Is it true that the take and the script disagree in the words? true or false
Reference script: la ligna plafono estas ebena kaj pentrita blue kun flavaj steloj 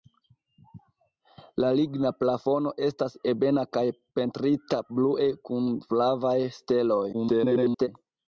true